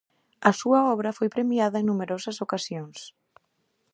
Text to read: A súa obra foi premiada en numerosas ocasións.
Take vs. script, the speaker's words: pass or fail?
pass